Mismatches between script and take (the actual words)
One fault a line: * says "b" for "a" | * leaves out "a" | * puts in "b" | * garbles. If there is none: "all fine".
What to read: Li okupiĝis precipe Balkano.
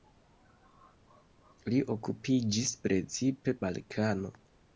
all fine